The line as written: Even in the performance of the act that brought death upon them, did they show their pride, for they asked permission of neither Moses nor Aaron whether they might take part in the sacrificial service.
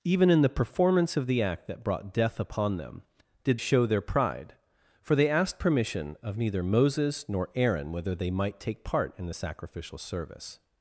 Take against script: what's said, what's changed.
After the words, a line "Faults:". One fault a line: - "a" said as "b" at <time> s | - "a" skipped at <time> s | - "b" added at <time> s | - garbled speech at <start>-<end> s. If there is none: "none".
Even in the performance of the act that brought death upon them, did show their pride, for they asked permission of neither Moses nor Aaron whether they might take part in the sacrificial service.
Faults:
- "they" skipped at 3.6 s